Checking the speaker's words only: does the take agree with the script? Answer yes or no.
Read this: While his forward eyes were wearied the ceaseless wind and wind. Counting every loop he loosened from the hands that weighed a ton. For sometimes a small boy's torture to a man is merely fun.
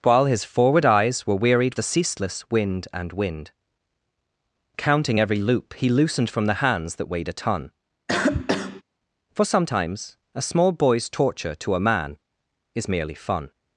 yes